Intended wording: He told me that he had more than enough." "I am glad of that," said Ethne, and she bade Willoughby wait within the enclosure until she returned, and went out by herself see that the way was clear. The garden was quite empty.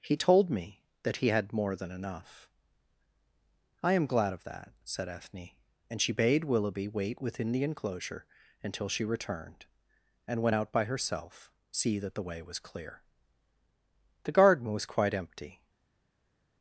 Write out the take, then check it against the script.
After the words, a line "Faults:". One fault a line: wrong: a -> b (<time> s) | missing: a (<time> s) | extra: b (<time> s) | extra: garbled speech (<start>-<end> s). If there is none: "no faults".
He told me that he had more than enough." "I am glad of that," said Ethne, and she bade Willoughby wait within the enclosure until she returned, and went out by herself see that the way was clear. The garden was quite empty.
Faults:
no faults